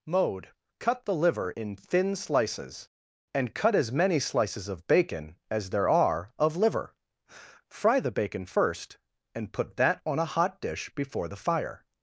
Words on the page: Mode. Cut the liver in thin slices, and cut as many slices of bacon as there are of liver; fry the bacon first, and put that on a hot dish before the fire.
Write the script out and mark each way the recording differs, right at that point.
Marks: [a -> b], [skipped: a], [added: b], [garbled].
Mode. Cut the liver in thin slices, and cut as many slices of bacon as there are of liver; fry the bacon first, and put that on a hot dish before the fire.